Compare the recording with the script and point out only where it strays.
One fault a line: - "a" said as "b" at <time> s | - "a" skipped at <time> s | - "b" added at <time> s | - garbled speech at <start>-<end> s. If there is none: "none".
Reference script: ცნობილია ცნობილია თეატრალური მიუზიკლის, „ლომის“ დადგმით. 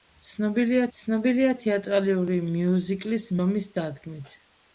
none